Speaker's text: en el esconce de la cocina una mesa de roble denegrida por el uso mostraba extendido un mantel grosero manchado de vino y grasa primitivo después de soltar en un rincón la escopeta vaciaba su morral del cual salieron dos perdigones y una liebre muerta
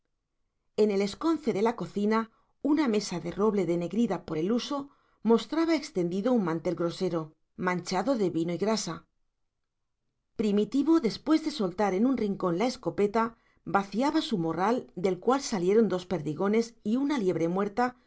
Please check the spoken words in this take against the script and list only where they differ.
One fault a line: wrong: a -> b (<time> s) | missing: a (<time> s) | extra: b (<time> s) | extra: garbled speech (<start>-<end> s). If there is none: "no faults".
no faults